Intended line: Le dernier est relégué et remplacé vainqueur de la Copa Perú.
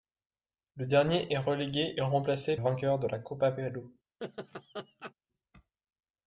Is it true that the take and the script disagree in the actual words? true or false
false